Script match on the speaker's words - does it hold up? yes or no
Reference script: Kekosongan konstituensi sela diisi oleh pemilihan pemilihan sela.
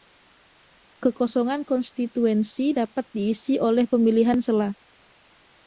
no